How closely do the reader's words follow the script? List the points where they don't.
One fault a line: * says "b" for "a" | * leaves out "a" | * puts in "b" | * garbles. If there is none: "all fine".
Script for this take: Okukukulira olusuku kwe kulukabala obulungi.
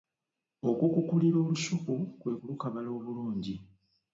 all fine